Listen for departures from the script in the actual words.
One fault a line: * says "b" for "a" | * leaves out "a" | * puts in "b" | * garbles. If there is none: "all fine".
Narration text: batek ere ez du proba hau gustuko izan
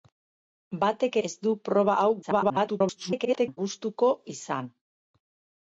* leaves out "ere"
* garbles